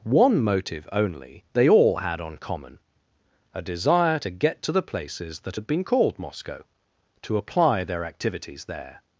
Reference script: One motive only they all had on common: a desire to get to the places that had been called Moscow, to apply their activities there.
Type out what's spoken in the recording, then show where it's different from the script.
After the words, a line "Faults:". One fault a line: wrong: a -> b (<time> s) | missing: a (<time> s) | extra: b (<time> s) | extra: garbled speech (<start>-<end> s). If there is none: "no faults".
One motive only they all had on common: a desire to get to the places that had been called Moscow, to apply their activities there.
Faults:
no faults